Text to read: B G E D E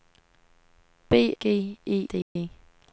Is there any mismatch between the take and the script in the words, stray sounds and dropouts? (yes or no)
yes